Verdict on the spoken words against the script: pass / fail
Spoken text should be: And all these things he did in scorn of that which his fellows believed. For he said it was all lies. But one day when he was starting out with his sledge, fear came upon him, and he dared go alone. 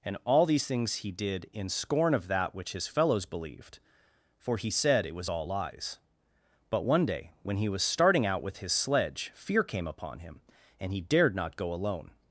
fail